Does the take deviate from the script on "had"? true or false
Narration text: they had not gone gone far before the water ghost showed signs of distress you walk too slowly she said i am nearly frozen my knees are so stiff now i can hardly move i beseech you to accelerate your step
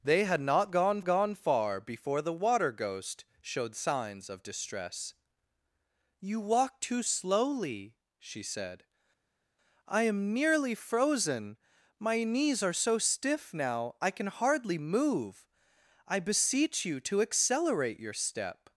false